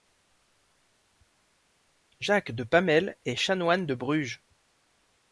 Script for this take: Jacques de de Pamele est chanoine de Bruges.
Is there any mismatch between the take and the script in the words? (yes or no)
yes